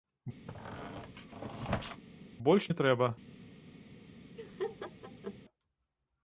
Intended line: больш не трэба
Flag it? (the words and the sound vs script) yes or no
yes